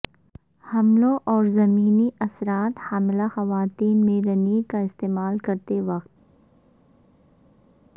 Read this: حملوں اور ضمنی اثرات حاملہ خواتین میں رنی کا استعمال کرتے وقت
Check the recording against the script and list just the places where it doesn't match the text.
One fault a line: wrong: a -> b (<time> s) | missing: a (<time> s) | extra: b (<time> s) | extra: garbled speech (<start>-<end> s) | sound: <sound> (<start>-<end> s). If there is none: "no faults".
no faults